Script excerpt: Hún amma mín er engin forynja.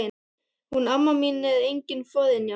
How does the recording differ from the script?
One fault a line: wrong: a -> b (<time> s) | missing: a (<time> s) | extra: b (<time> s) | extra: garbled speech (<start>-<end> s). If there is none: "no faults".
no faults